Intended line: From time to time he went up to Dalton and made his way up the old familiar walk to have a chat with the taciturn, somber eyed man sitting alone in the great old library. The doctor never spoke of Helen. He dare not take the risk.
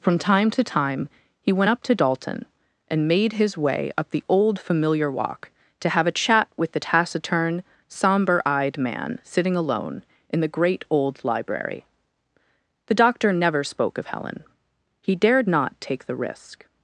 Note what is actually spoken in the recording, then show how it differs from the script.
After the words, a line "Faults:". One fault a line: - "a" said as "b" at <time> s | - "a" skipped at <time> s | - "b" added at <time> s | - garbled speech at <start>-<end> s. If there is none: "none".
From time to time he went up to Dalton and made his way up the old familiar walk to have a chat with the taciturn, somber eyed man sitting alone in the great old library. The doctor never spoke of Helen. He dared not take the risk.
Faults:
- "dare" said as "dared" at 15.2 s